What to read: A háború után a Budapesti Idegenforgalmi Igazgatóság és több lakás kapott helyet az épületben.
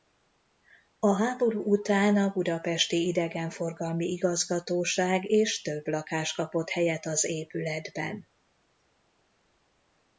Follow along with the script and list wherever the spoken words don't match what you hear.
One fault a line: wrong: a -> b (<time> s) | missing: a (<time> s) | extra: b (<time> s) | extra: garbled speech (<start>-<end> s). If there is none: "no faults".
no faults